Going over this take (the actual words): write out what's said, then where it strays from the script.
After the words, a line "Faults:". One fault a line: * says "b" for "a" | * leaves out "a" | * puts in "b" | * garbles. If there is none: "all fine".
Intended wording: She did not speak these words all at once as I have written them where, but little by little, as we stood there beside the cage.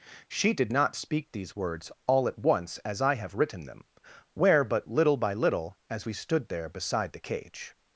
She did not speak these words all at once as I have written them where, but little by little, as we stood there beside the cage.
Faults:
all fine